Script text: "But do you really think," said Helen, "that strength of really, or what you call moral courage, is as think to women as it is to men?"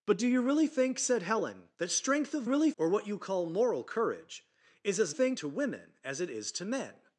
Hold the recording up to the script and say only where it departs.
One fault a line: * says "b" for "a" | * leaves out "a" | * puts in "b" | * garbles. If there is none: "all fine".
all fine